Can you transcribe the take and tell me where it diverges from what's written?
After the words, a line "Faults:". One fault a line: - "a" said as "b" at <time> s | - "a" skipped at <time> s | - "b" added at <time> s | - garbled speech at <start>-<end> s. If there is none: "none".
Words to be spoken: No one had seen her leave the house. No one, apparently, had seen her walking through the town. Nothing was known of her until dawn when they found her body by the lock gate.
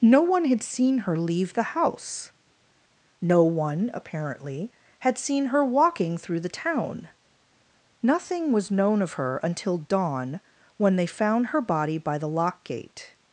No one had seen her leave the house. No one, apparently, had seen her walking through the town. Nothing was known of her until dawn when they found her body by the lock gate.
Faults:
none